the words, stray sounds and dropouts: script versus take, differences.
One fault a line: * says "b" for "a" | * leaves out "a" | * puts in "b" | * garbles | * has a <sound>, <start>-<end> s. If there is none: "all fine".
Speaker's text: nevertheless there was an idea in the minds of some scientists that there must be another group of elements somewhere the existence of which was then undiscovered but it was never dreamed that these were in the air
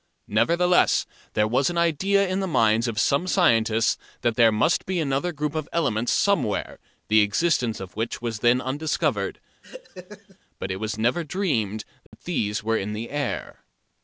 * has a laugh, 9.6-10.4 s
* has a dropout, 12.1-12.1 s